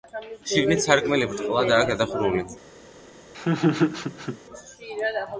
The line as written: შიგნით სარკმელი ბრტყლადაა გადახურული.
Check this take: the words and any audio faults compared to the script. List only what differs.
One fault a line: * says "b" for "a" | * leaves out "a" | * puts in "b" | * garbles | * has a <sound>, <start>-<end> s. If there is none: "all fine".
* has a laugh, 3.3-4.4 s